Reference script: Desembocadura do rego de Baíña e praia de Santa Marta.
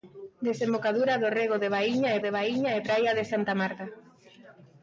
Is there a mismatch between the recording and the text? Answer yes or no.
yes